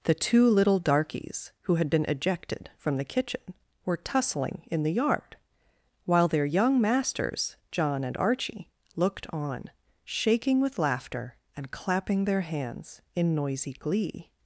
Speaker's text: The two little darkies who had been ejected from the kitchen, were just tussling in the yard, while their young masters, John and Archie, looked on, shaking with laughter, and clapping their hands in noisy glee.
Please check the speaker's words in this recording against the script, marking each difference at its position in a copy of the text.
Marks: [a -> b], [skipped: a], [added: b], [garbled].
The two little darkies who had been ejected from the kitchen, were [skipped: just] tussling in the yard, while their young masters, John and Archie, looked on, shaking with laughter, and clapping their hands in noisy glee.